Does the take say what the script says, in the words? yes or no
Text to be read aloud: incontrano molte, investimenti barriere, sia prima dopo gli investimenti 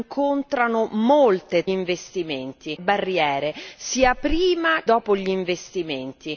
yes